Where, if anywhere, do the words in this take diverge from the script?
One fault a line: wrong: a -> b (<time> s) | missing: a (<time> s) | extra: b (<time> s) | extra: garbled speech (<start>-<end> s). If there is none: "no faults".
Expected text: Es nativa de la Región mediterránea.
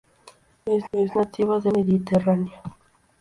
extra: es (0.9 s)
missing: la Región (1.7 s)